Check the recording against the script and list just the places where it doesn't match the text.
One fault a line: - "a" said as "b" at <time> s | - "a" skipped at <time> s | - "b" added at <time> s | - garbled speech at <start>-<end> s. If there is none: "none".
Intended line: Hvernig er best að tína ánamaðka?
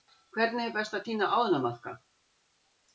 none